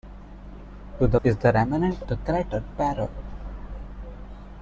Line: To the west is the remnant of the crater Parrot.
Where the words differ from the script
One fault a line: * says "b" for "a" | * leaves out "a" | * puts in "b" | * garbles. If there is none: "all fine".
* leaves out "west"
* leaves out "of"